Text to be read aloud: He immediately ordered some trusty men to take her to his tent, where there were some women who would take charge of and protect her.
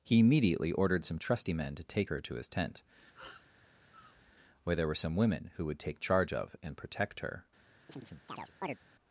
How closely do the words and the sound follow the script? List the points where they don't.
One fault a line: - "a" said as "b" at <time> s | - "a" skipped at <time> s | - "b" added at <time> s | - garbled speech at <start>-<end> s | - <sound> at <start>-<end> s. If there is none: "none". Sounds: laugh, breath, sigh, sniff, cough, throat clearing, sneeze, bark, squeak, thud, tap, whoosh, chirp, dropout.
- sniff at 3.1-4.3 s
- chirp at 7.9-8.8 s